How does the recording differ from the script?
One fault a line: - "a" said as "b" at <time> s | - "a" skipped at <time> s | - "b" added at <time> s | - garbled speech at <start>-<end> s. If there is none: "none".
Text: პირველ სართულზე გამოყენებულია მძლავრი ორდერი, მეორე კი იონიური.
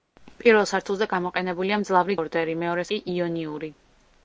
none